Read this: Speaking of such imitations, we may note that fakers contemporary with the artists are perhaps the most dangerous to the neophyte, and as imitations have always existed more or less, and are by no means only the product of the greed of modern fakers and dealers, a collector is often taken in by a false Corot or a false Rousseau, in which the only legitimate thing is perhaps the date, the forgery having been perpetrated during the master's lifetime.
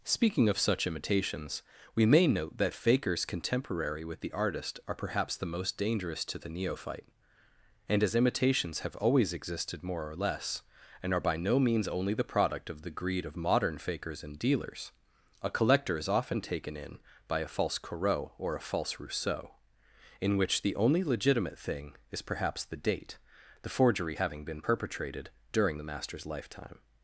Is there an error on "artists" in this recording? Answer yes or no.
yes